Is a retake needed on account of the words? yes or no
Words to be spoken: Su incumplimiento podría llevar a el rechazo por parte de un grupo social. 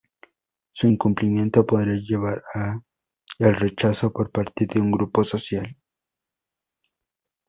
no